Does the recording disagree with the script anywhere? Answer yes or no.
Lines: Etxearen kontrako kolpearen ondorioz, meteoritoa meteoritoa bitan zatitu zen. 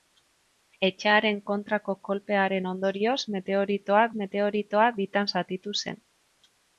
no